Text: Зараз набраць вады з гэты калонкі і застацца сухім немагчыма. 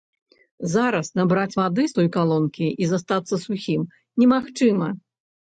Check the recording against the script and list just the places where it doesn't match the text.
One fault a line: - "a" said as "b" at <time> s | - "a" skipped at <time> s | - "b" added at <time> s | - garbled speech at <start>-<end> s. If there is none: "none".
- "гэты" said as "той" at 2.0 s